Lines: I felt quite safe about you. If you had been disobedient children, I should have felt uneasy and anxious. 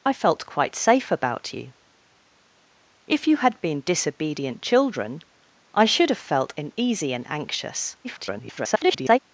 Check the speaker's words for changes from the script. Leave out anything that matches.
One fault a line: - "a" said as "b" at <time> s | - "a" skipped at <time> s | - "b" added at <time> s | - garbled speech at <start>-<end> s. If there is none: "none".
- garbled speech at 8.0-9.2 s